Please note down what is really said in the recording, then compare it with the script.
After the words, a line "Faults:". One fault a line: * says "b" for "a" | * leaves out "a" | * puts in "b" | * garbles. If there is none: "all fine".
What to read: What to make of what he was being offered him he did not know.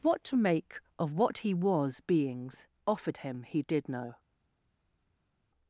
What to make of what he was beings offered him he did know.
Faults:
* says "beings" for "being"
* leaves out "not"